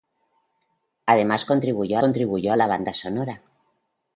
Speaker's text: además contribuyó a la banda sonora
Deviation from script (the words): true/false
true